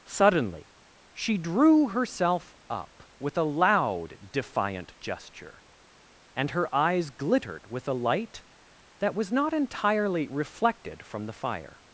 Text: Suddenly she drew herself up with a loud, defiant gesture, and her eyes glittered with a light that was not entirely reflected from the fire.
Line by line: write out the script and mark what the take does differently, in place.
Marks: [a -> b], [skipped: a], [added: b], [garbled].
Suddenly she drew herself up with a loud, defiant gesture, and her eyes glittered with a light that was not entirely reflected from the fire.